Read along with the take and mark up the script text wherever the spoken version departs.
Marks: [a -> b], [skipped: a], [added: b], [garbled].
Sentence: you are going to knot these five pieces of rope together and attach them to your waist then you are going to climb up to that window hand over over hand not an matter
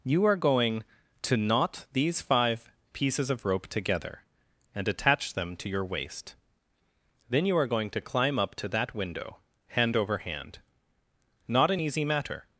you are going to knot these five pieces of rope together and attach them to your waist then you are going to climb up to that window hand over [skipped: over] hand not an [added: easy] matter